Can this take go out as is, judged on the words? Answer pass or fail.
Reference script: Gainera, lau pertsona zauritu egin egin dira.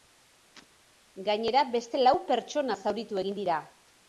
fail